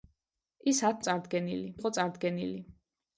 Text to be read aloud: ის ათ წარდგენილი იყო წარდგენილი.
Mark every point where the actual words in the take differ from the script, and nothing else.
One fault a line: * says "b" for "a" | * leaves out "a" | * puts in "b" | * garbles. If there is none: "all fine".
all fine